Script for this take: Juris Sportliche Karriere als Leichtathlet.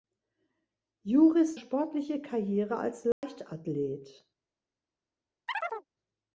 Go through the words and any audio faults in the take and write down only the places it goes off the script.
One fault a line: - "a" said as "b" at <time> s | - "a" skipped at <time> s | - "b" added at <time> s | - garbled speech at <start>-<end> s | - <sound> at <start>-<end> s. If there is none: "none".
- dropout at 3.1-3.2 s
- chirp at 5.5-5.9 s